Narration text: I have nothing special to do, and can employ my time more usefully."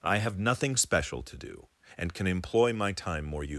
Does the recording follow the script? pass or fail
pass